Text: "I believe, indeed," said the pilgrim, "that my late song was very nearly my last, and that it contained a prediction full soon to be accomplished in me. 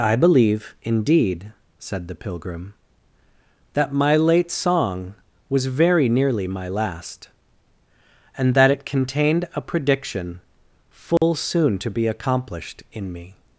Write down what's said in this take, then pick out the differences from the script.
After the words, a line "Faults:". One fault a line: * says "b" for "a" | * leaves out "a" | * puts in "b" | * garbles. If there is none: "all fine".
"I believe, indeed," said the pilgrim, "that my late song was very nearly my last, and that it contained a prediction full soon to be accomplished in me.
Faults:
all fine